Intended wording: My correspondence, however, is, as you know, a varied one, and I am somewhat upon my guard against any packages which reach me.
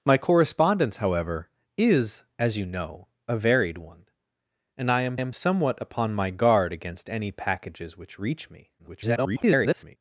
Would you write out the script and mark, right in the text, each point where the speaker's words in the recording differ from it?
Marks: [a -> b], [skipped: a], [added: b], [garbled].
My correspondence, however, is, as you know, a varied one, and I am [added: am] somewhat upon my guard against any packages which reach me. [garbled]